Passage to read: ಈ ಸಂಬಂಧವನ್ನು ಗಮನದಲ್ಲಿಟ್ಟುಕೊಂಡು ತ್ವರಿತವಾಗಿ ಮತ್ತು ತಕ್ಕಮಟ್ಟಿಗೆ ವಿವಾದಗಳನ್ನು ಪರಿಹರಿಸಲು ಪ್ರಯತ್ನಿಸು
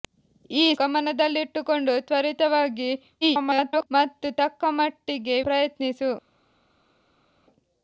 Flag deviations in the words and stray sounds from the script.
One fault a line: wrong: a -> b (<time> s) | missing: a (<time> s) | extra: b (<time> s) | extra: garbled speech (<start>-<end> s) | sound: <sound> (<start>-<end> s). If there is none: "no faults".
missing: ಸಂಬಂಧವನ್ನು (0.8 s)
extra: garbled speech (3.2-3.9 s)
missing: ವಿವಾದಗಳನ್ನು ಪರಿಹರಿಸಲು (5.4 s)